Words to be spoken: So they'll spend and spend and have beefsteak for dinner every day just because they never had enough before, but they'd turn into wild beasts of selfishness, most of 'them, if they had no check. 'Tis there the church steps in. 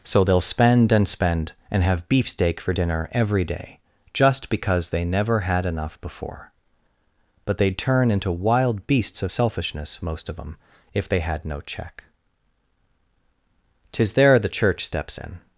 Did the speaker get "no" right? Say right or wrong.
right